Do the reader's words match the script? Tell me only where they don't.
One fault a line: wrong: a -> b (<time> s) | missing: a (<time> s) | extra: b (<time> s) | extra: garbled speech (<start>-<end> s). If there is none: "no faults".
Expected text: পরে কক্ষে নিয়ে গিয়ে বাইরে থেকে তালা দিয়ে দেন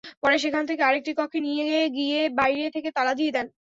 extra: সেখান থেকে আরেকটি (0.4 s)